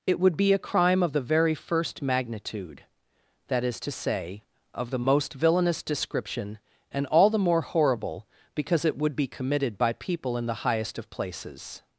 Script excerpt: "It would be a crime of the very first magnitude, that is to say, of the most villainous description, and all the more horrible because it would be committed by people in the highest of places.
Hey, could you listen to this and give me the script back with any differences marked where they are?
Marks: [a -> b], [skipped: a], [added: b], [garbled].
"It would be a crime of the very first magnitude, that is to say, of the most villainous description, and all the more horrible because it would be committed by people in the highest of places.